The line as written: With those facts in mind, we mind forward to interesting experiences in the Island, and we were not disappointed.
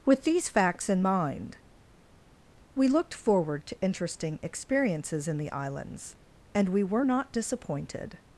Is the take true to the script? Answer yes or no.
no